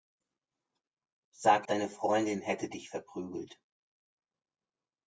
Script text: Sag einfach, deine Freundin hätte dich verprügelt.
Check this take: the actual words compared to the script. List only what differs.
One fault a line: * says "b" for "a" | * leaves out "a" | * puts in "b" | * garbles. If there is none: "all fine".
* leaves out "einfach"